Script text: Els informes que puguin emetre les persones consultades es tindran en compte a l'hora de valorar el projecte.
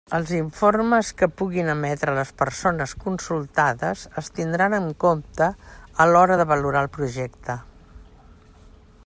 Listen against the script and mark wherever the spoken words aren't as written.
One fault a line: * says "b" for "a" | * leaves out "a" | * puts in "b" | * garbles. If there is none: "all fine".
all fine